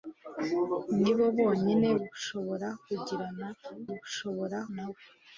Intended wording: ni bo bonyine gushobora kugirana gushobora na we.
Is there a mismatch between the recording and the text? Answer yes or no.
no